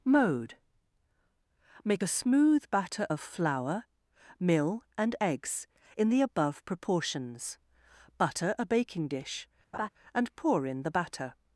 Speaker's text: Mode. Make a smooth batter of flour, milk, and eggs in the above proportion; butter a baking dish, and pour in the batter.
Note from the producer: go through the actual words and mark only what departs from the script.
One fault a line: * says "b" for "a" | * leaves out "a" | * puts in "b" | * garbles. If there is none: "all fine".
* says "mill" for "milk"
* says "proportions" for "proportion"